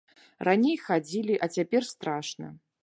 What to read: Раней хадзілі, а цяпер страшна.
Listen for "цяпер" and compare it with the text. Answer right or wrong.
right